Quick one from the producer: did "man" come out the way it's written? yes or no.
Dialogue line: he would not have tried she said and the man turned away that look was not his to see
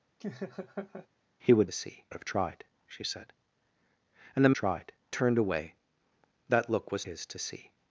no